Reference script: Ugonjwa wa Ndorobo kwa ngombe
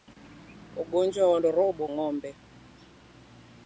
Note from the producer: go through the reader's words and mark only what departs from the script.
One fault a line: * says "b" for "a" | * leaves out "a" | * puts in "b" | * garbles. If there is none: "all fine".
* leaves out "kwa"